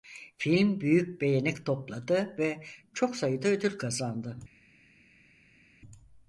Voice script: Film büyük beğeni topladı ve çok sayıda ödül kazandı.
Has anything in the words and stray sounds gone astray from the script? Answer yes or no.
no